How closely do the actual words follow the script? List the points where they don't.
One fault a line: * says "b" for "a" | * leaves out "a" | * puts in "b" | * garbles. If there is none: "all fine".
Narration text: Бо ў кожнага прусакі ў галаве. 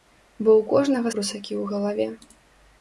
all fine